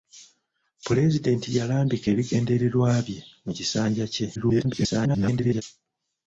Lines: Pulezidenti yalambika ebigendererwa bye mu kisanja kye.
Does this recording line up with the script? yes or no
no